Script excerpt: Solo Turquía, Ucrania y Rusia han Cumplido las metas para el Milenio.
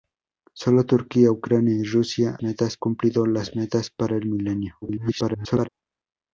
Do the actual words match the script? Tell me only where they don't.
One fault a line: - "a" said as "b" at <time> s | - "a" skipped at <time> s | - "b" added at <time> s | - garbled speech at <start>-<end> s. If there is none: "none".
- "han" said as "metas" at 2.4 s
- garbled speech at 4.8-5.7 s